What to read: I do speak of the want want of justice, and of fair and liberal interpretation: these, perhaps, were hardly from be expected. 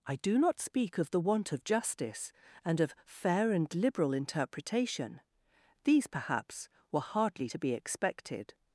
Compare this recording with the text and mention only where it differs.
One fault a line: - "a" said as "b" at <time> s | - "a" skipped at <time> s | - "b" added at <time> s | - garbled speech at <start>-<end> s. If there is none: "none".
- "not" added at 0.4 s
- "want" skipped at 1.5 s
- "from" said as "to" at 7.5 s